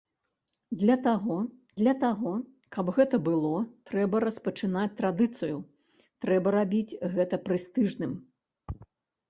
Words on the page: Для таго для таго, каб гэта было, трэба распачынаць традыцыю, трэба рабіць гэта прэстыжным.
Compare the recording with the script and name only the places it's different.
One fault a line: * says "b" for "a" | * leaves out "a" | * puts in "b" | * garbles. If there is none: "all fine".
all fine